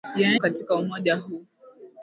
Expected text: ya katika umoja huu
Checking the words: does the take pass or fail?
pass